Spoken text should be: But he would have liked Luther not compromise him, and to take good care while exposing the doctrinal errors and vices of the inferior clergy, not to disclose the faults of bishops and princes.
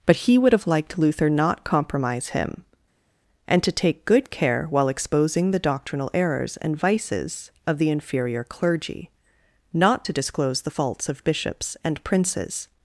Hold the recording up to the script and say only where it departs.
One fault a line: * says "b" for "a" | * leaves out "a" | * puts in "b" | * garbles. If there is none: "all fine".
all fine